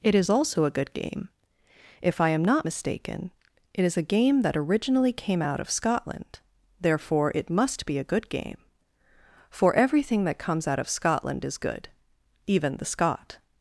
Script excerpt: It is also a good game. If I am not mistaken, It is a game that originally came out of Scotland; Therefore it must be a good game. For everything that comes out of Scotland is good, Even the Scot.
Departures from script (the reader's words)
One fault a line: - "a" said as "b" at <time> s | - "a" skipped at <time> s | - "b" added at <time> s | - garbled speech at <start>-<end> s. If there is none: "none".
none